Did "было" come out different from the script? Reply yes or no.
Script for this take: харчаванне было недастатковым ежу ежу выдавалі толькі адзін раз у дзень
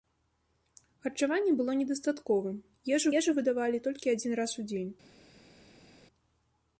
no